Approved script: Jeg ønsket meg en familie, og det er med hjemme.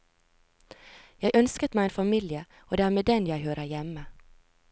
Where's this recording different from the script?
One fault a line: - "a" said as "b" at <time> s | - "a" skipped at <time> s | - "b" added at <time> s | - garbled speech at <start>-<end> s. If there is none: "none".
- "den jeg hører" added at 3.0 s